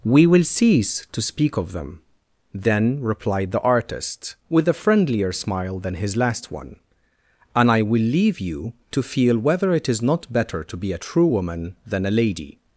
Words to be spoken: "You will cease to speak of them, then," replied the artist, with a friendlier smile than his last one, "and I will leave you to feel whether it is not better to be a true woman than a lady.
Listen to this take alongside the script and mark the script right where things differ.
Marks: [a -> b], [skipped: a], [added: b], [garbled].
["You -> We] will cease to speak of them, then," replied the artist, with a friendlier smile than his last one, "and I will leave you to feel whether it is not better to be a true woman than a lady.